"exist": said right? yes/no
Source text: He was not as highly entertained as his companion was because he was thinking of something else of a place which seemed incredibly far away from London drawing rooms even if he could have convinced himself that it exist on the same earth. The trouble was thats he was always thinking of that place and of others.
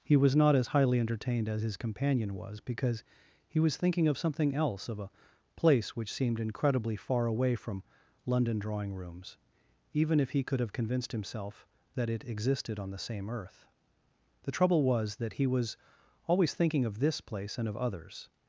no